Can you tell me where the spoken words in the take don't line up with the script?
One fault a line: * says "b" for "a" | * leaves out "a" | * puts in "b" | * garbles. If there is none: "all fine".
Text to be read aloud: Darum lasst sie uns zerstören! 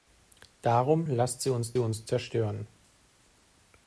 * puts in "uns"